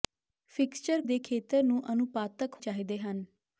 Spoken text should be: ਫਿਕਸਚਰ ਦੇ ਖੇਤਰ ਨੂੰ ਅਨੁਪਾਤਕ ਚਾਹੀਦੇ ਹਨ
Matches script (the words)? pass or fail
pass